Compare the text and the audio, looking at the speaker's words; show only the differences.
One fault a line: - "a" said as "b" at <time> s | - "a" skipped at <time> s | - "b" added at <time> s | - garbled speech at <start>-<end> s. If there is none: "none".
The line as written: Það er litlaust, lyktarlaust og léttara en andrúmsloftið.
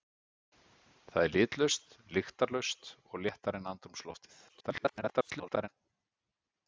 - garbled speech at 4.5-5.7 s